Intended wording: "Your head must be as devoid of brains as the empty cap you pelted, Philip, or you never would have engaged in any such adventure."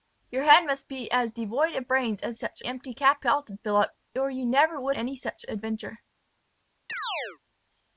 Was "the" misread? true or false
true